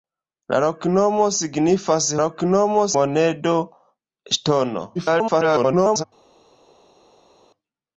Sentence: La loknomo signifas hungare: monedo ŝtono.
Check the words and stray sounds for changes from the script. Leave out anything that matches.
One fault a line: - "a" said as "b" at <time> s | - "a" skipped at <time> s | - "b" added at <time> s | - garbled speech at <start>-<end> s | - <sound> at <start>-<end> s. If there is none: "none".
- "hungare" said as "loknomo" at 2.2 s
- garbled speech at 5.0-6.0 s